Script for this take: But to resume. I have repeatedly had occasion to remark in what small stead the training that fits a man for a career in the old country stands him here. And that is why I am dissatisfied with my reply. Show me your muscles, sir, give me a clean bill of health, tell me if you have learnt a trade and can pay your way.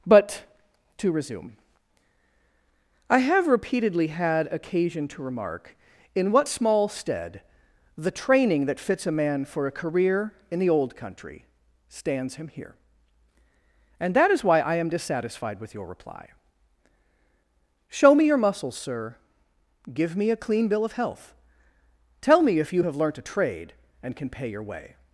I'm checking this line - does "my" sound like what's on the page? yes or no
no